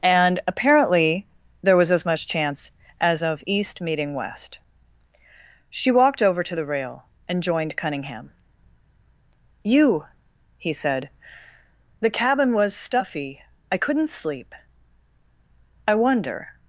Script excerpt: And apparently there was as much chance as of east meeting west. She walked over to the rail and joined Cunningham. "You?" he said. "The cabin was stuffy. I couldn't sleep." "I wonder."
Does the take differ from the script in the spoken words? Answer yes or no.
no